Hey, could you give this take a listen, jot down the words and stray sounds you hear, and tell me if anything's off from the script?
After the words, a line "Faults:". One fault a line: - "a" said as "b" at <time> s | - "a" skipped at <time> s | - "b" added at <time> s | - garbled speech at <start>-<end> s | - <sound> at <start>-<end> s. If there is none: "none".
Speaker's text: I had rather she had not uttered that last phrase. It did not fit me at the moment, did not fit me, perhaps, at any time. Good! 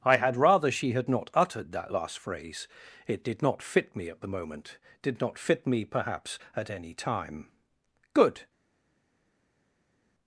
I had rather she had not uttered that last phrase. It did not fit me at the moment, did not fit me, perhaps, at any time. Good!
Faults:
none